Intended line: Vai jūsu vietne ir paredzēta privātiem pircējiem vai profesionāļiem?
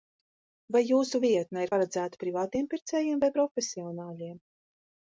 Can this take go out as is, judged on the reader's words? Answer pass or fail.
pass